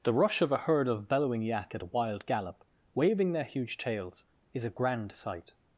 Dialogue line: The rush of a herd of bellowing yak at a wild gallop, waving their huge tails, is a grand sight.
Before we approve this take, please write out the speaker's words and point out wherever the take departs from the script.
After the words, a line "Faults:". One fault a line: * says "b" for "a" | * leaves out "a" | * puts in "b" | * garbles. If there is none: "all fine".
The rush of a herd of bellowing yak at a wild gallop, waving their huge tails, is a grand sight.
Faults:
all fine